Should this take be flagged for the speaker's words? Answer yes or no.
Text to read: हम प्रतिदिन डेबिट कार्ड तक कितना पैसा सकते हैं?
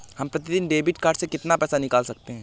yes